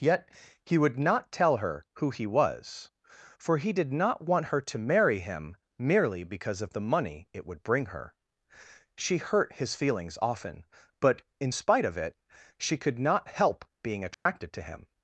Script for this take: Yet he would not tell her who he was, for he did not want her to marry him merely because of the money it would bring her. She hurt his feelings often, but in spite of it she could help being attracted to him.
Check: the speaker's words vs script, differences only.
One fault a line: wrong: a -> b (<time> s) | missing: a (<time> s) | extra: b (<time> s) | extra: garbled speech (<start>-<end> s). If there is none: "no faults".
extra: not (13.0 s)